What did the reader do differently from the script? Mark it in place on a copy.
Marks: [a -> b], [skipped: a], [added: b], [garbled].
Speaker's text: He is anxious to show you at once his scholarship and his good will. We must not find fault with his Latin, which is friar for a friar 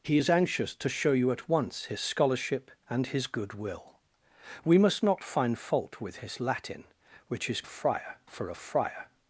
He is anxious to show you at once his scholarship and his good will. We must not find fault with his Latin, which is friar for a friar